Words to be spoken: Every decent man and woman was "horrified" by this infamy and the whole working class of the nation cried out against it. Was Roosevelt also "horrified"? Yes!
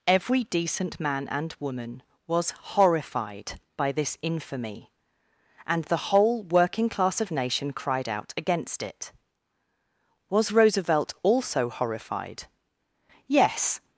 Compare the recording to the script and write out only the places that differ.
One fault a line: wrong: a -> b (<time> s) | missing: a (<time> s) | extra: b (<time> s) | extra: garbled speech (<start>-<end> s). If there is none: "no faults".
missing: the (7.3 s)